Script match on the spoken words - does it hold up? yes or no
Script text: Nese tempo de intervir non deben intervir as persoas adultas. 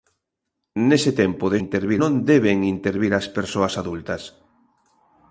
yes